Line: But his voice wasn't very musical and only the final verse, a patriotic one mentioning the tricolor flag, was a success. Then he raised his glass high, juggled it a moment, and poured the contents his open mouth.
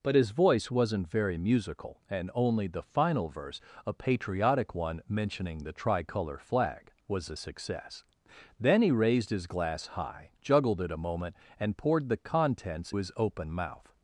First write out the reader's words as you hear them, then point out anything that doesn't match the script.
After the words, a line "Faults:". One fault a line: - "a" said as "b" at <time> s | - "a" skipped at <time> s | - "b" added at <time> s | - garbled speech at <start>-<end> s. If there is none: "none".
But his voice wasn't very musical and only the final verse, a patriotic one mentioning the tricolor flag, was a success. Then he raised his glass high, juggled it a moment, and poured the contents his open mouth.
Faults:
none